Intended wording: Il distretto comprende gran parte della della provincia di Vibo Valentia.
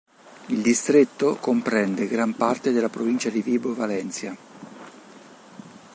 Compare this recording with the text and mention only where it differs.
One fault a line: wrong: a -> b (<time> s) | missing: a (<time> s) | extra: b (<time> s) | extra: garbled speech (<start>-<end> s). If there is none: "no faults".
missing: della (2.9 s)